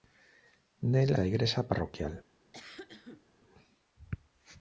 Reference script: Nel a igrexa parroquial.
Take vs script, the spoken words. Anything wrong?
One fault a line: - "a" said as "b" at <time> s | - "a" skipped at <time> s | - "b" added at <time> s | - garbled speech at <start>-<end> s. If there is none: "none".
none